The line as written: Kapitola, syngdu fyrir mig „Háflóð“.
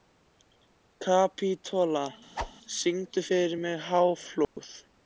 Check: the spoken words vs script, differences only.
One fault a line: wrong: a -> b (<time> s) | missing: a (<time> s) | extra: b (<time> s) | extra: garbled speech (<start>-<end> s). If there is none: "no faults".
no faults